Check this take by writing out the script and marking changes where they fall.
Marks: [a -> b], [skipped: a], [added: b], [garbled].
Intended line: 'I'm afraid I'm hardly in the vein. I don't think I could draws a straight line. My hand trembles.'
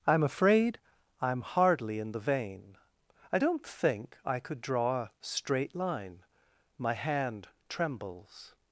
'I'm afraid I'm hardly in the vein. I don't think I could [draws -> draw] a straight line. My hand trembles.'